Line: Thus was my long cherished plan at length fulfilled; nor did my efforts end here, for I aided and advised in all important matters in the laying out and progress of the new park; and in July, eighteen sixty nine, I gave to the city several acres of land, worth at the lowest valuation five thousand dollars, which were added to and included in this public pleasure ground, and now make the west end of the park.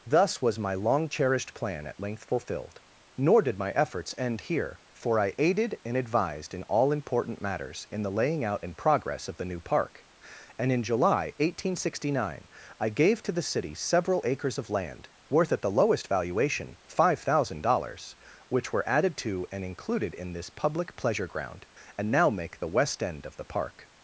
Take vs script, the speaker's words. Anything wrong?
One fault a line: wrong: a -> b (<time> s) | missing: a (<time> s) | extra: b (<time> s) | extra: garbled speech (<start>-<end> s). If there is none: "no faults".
no faults